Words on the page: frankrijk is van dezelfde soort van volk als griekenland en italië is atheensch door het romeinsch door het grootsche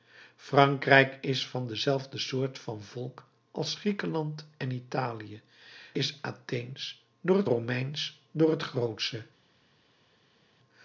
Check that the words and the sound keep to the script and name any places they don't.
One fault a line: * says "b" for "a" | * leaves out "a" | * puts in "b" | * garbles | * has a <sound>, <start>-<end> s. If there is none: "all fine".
all fine